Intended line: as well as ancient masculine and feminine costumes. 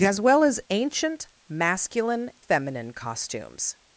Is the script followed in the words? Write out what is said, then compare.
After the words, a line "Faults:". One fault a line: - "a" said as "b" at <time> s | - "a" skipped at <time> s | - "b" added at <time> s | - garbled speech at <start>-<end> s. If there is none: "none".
as well as ancient masculine feminine costumes.
Faults:
- "and" skipped at 2.3 s